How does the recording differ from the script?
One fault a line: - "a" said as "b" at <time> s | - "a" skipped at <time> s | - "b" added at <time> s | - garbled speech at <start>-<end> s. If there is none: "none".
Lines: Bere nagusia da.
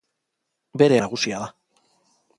none